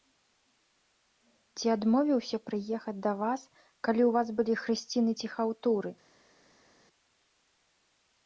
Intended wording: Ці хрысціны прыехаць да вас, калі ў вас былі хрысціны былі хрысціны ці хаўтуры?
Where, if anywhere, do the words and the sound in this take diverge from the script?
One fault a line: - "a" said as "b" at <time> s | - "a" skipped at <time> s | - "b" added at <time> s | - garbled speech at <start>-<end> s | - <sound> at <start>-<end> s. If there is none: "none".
- "хрысціны" said as "адмовіўся" at 1.8 s
- "былі хрысціны" skipped at 5.1 s